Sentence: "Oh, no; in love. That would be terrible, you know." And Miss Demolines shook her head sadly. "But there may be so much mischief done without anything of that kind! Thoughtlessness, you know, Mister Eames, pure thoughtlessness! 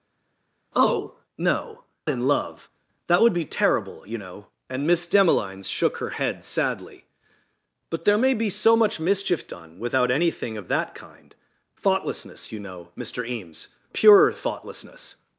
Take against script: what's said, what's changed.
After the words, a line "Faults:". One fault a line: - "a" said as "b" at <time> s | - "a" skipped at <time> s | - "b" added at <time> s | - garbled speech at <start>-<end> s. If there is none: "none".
"Oh, no; in love. That would be terrible, you know." And Miss Demolines shook her head sadly. "But there may be so much mischief done without anything of that kind! Thoughtlessness, you know, Mister Eames, pure thoughtlessness!
Faults:
none